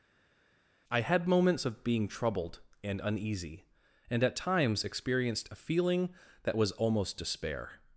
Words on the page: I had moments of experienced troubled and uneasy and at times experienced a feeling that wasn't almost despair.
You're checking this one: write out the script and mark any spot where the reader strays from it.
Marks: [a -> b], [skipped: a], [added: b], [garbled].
I had moments of [experienced -> being] troubled and uneasy and at times experienced a feeling that [wasn't -> was] almost despair.